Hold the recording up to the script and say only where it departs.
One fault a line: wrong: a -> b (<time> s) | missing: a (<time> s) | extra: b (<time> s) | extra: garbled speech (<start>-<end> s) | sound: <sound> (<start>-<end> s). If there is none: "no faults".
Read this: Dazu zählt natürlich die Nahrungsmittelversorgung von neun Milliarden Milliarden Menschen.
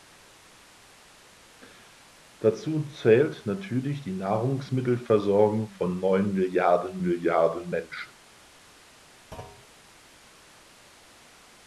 sound: thud (9.3-9.7 s)